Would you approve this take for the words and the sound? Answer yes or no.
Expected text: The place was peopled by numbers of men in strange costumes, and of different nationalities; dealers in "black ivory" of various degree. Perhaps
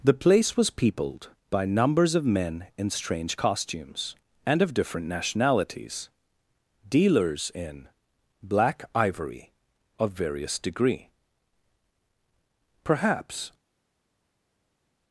yes